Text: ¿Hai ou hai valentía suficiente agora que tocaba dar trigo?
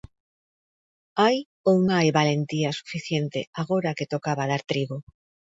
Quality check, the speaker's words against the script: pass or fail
pass